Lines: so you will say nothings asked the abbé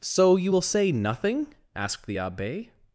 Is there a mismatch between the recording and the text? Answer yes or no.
yes